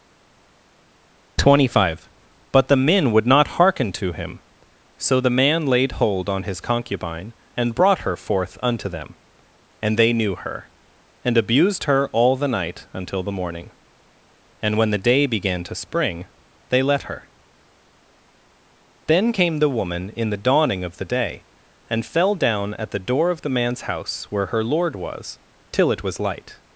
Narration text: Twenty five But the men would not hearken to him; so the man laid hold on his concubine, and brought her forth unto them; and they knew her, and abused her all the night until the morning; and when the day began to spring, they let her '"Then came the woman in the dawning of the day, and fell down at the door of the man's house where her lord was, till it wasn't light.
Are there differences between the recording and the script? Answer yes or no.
yes